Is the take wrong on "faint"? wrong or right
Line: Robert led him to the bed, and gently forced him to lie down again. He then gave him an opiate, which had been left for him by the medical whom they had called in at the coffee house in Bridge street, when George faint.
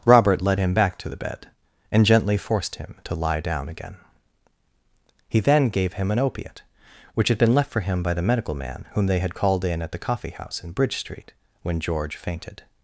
wrong